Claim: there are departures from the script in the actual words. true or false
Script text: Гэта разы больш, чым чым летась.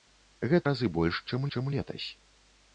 false